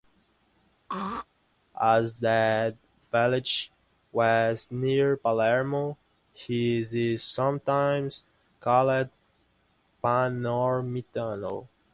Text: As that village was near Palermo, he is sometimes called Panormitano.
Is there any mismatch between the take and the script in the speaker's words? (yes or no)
no